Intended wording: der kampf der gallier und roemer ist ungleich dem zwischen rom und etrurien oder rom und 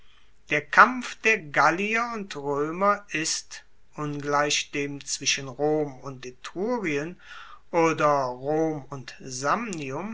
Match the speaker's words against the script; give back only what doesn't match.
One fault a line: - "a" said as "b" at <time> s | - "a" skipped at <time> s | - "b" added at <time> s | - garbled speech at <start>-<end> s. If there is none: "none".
none